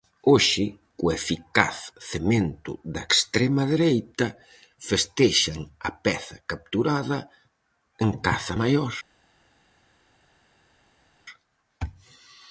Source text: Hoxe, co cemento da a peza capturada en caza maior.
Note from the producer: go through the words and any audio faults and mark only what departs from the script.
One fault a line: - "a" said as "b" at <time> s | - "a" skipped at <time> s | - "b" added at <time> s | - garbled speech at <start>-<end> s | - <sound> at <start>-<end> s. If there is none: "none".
- "eficaz" added at 1.2 s
- "extrema dereita festexan" added at 3.1 s